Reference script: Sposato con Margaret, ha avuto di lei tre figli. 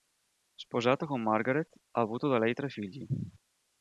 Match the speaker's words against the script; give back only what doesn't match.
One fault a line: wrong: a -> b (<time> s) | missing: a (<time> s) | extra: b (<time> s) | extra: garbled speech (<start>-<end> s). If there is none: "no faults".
wrong: di -> da (2.3 s)